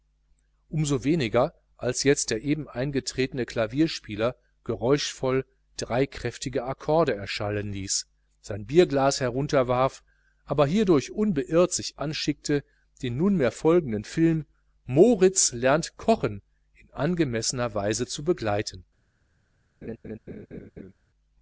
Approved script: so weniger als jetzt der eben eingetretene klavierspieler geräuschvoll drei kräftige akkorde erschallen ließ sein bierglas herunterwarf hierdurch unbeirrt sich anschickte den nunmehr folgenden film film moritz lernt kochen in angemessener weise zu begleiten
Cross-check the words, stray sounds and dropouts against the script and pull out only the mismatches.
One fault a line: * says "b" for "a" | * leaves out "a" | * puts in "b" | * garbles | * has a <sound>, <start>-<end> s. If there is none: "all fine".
* puts in "aber"
* leaves out "film"
* has a laugh, 19.8-20.9 s